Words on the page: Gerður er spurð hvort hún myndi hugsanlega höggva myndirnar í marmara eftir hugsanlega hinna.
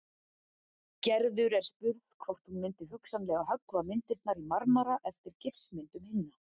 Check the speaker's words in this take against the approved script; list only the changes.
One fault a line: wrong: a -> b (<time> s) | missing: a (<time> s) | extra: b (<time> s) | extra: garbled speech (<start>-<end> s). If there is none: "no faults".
wrong: hugsanlega -> gifsmyndum (5.5 s)